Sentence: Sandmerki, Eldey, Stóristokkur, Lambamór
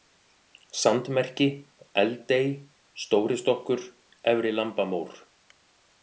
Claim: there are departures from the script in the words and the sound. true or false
true